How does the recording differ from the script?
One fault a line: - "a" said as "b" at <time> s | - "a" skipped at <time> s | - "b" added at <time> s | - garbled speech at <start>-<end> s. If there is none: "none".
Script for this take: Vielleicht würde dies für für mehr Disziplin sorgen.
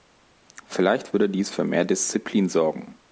- "für" skipped at 1.6 s